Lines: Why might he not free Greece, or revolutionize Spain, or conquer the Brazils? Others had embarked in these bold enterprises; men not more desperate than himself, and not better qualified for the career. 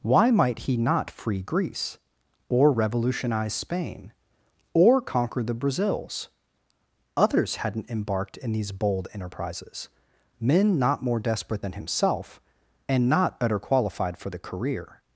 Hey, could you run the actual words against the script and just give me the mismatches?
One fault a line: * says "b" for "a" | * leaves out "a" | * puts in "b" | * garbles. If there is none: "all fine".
* says "hadn't" for "had"